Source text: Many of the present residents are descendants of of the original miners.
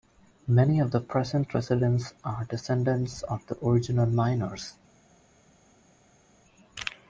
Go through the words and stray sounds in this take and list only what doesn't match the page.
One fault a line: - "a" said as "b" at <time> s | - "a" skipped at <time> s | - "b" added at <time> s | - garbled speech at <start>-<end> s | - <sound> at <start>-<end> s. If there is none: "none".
- "of" skipped at 3.4 s